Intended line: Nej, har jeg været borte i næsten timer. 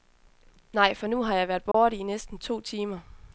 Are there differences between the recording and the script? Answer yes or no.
yes